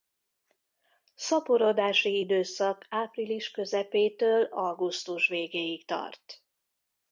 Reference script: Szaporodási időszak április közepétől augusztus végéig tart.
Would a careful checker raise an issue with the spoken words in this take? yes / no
no